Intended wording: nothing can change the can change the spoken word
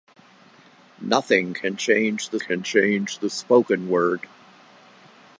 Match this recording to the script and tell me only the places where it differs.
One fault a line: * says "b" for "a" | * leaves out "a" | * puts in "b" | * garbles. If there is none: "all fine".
all fine